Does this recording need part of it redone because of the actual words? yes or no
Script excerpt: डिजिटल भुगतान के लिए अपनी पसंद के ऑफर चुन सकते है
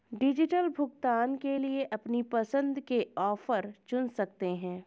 no